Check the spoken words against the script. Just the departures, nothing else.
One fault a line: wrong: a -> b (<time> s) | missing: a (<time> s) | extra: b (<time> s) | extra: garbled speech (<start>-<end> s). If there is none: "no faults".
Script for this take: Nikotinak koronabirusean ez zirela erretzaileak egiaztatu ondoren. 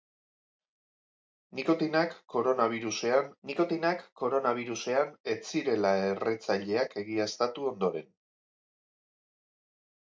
extra: nikotinak koronabirusean (3.5 s)